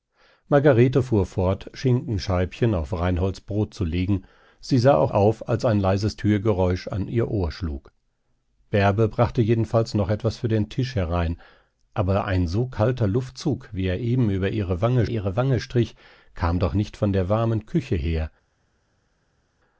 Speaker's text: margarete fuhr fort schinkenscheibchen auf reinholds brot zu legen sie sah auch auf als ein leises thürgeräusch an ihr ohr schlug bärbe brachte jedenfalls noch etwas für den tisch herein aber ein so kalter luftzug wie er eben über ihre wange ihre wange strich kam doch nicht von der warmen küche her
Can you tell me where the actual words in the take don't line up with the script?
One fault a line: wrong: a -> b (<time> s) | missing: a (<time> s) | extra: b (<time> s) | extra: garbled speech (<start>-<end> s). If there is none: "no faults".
no faults